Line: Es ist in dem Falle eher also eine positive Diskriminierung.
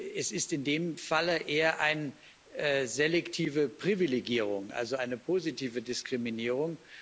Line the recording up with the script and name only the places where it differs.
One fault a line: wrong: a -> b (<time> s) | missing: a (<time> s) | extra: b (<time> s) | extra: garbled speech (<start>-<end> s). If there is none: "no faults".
extra: eine selektive Privilegierung (1.8 s)